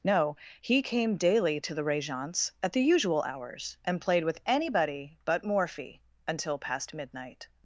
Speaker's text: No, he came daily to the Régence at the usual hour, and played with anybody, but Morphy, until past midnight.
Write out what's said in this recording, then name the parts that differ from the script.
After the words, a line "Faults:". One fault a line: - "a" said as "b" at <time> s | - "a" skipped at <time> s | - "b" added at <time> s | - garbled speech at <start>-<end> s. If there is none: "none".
No, he came daily to the Régence at the usual hours, and played with anybody, but Morphy, until past midnight.
Faults:
- "hour" said as "hours" at 3.2 s